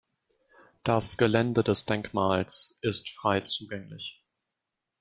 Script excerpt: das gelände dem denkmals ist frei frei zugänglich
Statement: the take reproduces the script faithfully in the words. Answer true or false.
false